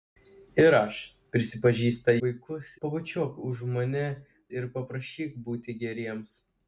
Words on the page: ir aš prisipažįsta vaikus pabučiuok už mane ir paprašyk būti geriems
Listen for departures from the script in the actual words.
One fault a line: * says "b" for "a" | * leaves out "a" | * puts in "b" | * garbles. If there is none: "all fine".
all fine